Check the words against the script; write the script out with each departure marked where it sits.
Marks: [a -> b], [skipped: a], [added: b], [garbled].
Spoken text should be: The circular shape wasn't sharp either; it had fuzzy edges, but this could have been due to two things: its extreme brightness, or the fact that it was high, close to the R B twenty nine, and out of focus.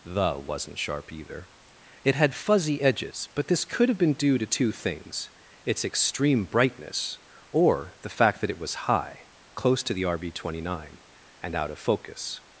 The [skipped: circular shape] wasn't sharp either; it had fuzzy edges, but this could have been due to two things: its extreme brightness, or the fact that it was high, close to the R B twenty nine, and out of focus.